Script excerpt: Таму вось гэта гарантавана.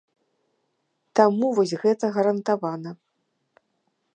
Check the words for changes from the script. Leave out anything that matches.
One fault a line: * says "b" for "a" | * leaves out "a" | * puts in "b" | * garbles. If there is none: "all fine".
all fine